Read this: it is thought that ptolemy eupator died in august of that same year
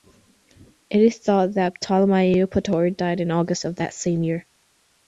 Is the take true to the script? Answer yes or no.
yes